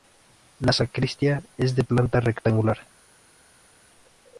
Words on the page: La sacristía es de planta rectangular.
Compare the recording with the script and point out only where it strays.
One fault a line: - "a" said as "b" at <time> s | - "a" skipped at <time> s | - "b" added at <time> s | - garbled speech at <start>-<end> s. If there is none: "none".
none